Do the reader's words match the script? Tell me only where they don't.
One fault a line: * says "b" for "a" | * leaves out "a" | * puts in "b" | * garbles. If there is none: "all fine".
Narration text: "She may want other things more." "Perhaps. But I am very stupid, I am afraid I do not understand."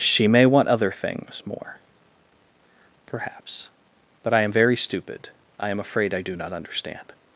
all fine